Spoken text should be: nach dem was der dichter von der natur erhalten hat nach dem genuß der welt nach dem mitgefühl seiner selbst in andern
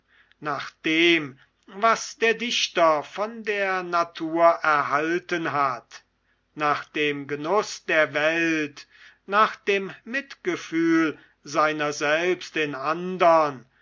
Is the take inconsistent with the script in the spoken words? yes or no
no